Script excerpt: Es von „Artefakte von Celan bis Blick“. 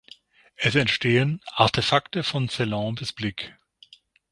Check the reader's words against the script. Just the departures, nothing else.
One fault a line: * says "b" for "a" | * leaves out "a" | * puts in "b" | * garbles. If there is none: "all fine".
* says "entstehen" for "von"